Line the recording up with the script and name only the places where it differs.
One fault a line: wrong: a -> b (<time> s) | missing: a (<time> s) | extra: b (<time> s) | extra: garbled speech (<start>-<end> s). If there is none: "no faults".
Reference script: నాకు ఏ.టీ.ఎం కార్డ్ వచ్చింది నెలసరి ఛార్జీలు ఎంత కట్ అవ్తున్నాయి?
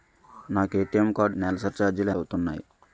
missing: వచ్చింది (1.4 s)
missing: ఎంత కట్ (2.1 s)